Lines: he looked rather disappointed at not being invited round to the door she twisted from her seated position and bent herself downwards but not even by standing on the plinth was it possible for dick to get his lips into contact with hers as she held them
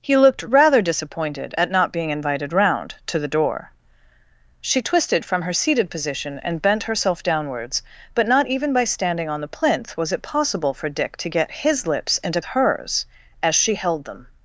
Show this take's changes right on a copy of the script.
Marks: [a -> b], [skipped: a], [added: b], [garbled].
he looked rather disappointed at not being invited round to the door she twisted from her seated position and bent herself downwards but not even by standing on the plinth was it possible for dick to get his lips into [skipped: contact with] hers as she held them